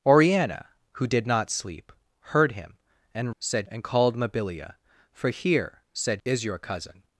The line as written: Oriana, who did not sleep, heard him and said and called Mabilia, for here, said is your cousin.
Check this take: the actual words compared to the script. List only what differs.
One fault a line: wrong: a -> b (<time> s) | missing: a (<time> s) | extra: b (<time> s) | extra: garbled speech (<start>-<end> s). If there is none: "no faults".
no faults